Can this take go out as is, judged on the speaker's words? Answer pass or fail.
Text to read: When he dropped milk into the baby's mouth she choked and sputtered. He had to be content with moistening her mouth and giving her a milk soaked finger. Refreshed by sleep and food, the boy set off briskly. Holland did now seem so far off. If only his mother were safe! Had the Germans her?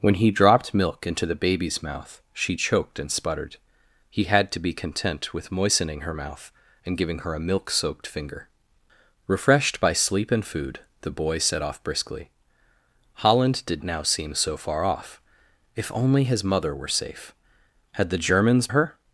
pass